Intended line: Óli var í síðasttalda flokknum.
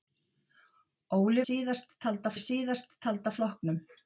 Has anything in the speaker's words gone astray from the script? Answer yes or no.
yes